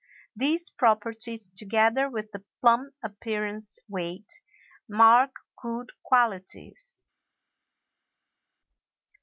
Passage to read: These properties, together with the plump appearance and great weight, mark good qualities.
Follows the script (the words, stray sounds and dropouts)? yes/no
no